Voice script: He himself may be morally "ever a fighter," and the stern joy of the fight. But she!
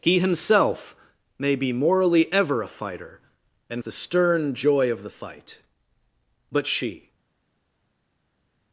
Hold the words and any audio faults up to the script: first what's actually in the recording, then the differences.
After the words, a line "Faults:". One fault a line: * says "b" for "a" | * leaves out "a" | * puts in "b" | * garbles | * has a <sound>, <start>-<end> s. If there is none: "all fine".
He himself may be morally "ever a fighter," and the stern joy of the fight. But she!
Faults:
all fine